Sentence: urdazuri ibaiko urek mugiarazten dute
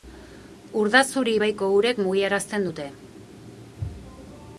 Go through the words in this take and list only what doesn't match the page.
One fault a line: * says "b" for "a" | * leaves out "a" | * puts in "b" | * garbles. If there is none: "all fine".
all fine